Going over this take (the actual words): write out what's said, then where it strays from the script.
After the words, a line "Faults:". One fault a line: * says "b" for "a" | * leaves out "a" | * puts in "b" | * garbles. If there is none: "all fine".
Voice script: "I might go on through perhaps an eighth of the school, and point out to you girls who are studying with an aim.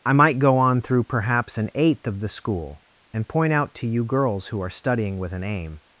"I might go on through perhaps an eighth of the school, and point out to you girls who are studying with an aim.
Faults:
all fine